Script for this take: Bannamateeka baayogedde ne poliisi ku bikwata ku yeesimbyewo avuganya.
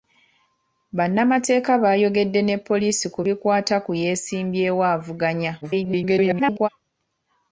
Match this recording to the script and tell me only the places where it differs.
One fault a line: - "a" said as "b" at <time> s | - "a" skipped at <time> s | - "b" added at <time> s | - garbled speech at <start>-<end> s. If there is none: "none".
- garbled speech at 5.6-6.7 s